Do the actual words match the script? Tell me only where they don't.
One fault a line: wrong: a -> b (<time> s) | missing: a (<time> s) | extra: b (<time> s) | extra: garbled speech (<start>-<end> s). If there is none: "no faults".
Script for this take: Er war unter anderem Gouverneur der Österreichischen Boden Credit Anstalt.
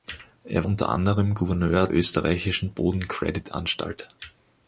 missing: war (0.7 s)
missing: der (1.9 s)